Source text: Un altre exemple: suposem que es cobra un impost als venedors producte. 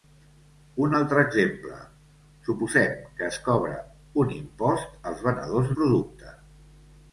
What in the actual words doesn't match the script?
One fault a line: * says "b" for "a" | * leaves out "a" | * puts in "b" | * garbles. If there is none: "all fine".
all fine